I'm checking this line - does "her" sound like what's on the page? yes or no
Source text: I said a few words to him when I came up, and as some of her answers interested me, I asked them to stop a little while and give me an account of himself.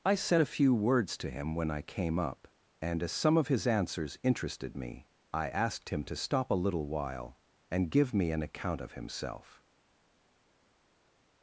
no